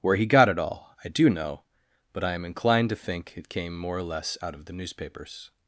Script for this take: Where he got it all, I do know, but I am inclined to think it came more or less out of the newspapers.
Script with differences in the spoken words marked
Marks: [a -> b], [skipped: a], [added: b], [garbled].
Where he got it all, I do know, but I am inclined to think it came more or less out of the newspapers.